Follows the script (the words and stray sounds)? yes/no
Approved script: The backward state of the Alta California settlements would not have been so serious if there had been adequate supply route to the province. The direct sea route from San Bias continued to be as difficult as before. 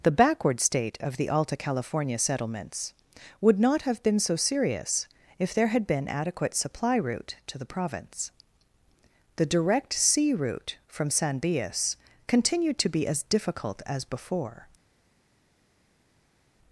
yes